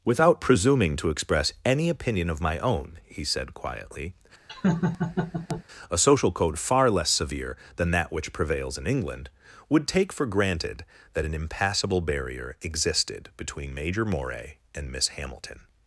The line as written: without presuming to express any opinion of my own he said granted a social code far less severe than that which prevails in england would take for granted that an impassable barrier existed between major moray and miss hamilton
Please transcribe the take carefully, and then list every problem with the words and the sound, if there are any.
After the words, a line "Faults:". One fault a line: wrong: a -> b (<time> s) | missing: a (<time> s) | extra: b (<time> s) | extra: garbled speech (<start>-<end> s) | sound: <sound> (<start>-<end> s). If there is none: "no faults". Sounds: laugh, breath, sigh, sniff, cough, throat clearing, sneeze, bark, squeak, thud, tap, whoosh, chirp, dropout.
without presuming to express any opinion of my own he said quietly a social code far less severe than that which prevails in england would take for granted that an impassable barrier existed between major moray and miss hamilton
Faults:
wrong: granted -> quietly (3.5 s)
sound: laugh (4.5-5.6 s)